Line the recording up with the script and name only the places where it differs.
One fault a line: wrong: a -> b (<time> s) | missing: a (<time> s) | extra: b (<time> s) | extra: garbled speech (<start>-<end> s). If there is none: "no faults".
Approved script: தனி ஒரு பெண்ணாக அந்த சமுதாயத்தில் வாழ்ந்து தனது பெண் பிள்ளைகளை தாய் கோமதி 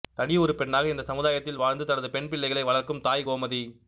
wrong: அந்த -> இந்த (0.9 s)
extra: வளர்க்கும் (2.6 s)